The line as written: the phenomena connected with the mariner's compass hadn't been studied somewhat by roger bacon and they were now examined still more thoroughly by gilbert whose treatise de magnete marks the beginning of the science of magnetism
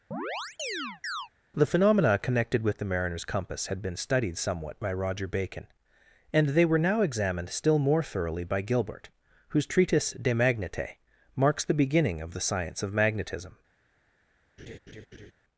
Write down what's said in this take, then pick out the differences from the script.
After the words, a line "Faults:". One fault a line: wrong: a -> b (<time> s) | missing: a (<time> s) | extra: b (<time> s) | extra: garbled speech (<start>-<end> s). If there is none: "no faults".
the phenomena connected with the mariner's compass had been studied somewhat by roger bacon and they were now examined still more thoroughly by gilbert whose treatise de magnete marks the beginning of the science of magnetism
Faults:
wrong: hadn't -> had (3.7 s)